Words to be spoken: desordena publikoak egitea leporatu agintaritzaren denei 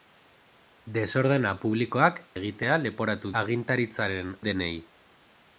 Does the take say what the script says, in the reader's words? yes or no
yes